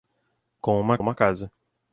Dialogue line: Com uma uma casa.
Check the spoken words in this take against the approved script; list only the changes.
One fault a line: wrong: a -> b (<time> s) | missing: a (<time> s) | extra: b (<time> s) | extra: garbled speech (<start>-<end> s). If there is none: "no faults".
no faults